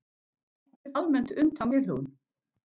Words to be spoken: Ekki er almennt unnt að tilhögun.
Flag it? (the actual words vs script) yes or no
no